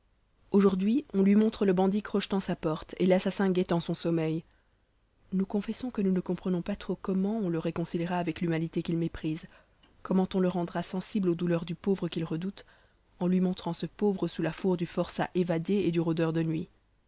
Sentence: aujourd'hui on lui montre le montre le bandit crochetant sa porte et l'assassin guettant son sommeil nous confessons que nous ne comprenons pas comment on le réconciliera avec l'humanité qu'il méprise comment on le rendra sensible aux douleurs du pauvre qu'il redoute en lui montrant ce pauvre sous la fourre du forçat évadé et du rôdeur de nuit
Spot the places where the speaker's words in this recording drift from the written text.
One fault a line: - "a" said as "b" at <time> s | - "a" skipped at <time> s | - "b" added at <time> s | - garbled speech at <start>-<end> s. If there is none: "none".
- "montre le" skipped at 1.7 s
- "trop" added at 6.8 s